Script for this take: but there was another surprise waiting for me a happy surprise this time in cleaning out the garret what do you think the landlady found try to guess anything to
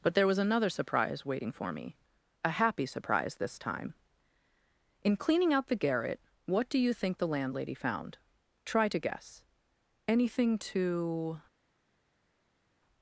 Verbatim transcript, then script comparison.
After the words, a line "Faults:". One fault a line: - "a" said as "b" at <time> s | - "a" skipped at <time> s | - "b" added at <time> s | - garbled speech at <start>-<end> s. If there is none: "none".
but there was another surprise waiting for me a happy surprise this time in cleaning out the garret what do you think the landlady found try to guess anything to
Faults:
none